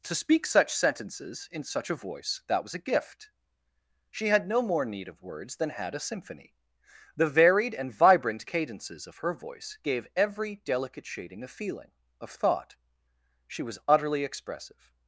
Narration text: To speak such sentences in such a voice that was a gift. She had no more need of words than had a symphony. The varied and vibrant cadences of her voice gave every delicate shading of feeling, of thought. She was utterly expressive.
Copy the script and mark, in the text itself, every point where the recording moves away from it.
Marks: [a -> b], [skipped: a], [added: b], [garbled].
To speak such sentences in such a voice that was a gift. She had no more need of words than had a symphony. The varied and vibrant cadences of her voice gave every delicate shading of feeling, of thought. She was utterly expressive.